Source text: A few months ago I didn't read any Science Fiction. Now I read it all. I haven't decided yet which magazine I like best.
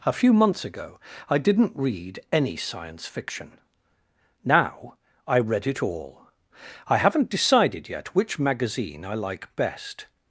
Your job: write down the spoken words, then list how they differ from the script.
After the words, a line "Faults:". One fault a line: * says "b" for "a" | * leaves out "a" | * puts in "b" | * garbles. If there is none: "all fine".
A few months ago I didn't read any Science Fiction. Now I read it all. I haven't decided yet which magazine I like best.
Faults:
all fine